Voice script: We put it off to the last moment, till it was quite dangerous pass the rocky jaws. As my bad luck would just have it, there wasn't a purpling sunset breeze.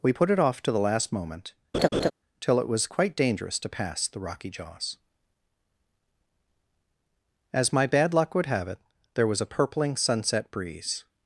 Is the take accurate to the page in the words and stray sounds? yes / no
no